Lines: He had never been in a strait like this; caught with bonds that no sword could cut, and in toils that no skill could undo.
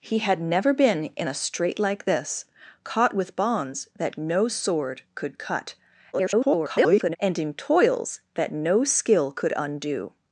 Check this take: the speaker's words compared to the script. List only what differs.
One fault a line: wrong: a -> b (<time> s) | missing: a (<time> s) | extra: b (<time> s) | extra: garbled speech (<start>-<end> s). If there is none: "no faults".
extra: garbled speech (6.1-7.2 s)